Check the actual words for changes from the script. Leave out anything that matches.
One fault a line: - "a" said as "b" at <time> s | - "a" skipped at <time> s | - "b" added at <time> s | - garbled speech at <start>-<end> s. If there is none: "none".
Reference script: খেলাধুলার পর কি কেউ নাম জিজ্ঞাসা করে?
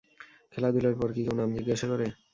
none